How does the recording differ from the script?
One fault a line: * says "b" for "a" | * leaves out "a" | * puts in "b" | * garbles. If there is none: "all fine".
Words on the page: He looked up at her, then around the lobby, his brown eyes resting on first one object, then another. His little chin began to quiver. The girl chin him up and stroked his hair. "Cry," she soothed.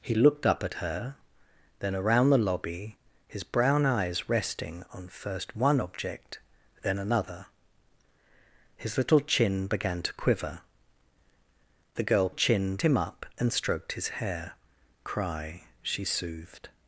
all fine